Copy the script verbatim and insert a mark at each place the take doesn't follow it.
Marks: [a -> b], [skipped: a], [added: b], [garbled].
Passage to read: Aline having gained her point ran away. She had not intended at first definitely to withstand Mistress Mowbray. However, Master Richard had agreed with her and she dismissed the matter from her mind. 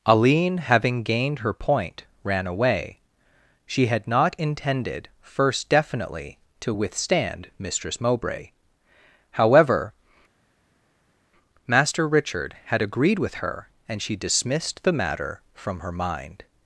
Aline having gained her point ran away. She had not intended [skipped: at] first definitely to withstand Mistress Mowbray. However, Master Richard had agreed with her and she dismissed the matter from her mind.